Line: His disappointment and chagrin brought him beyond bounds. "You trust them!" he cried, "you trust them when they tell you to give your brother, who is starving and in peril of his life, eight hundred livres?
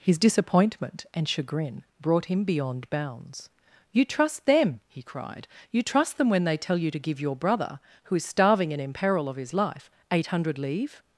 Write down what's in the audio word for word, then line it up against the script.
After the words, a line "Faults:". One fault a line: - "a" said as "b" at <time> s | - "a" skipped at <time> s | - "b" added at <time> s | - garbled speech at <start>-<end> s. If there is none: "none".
His disappointment and chagrin brought him beyond bounds. "You trust them!" he cried, "you trust them when they tell you to give your brother, who is starving and in peril of his life, eight hundred livres?
Faults:
none